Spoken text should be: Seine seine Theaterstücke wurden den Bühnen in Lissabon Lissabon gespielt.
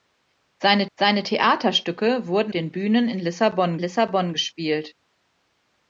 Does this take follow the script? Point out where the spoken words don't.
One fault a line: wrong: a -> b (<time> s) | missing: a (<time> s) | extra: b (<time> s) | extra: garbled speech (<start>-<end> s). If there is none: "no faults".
no faults